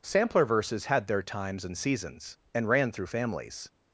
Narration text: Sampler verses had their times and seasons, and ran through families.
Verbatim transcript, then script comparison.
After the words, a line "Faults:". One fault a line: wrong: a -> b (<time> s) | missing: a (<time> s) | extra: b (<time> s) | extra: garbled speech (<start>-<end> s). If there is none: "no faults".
Sampler verses had their times and seasons, and ran through families.
Faults:
no faults